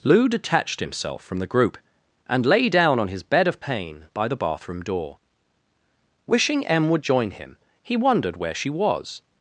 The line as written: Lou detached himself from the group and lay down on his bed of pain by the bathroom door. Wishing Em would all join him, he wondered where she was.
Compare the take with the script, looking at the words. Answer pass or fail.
fail